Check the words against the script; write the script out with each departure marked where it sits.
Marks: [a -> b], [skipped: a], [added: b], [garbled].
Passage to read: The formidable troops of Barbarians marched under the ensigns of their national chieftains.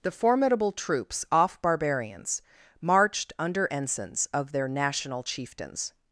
The formidable troops [of -> off] Barbarians marched under [skipped: the] ensigns of their national chieftains.